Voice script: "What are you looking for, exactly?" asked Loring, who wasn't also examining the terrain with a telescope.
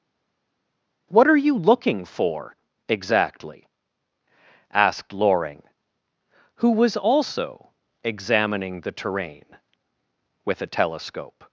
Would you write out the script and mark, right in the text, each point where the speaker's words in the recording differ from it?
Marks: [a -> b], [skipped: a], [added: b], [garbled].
"What are you looking for, exactly?" asked Loring, who [wasn't -> was] also examining the terrain with a telescope.